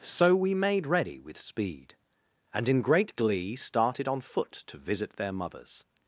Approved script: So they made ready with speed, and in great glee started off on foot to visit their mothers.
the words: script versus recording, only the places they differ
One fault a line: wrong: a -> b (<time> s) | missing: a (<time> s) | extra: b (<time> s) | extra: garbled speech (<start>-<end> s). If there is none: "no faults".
wrong: they -> we (0.3 s)
missing: off (4.1 s)